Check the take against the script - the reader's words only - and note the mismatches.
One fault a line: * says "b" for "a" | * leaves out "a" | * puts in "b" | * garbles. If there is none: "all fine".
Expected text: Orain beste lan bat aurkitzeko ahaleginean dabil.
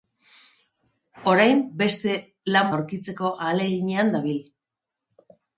* leaves out "bat"